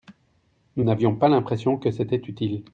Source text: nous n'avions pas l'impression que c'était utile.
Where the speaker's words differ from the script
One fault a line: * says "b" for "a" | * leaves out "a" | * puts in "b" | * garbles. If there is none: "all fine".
all fine